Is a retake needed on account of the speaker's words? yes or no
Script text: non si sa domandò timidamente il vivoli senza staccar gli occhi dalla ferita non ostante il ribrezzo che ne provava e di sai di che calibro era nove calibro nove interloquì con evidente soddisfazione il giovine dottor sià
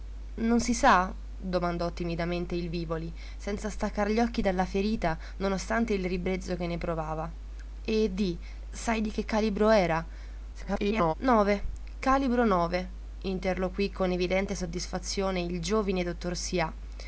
yes